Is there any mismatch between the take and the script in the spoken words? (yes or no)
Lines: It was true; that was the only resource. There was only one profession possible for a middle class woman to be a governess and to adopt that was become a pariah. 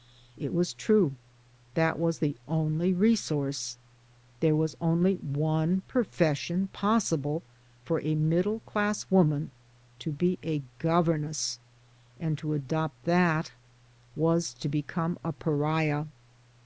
yes